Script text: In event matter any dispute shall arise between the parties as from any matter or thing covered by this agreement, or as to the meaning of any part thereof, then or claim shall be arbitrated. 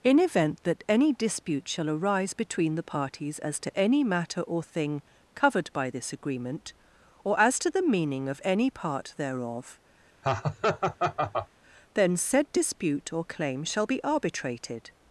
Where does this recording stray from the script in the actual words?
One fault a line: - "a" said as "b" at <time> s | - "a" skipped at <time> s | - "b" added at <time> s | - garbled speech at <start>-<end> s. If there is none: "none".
- "matter" said as "that" at 0.6 s
- "from" said as "to" at 3.6 s
- "said dispute" added at 12.2 s